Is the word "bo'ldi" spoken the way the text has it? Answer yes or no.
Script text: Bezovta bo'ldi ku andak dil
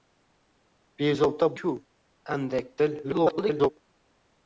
no